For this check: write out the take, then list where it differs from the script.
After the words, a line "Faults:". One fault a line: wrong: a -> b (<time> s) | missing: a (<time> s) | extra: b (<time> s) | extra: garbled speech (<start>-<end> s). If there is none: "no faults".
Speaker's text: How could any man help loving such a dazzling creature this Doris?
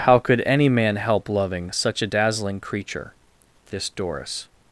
How could any man help loving such a dazzling creature this Doris?
Faults:
no faults